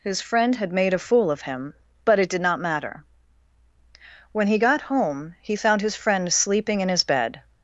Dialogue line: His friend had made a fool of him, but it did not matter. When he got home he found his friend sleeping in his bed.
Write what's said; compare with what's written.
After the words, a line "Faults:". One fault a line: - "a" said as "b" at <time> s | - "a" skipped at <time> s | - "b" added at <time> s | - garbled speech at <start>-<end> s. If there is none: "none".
His friend had made a fool of him, but it did not matter. When he got home he found his friend sleeping in his bed.
Faults:
none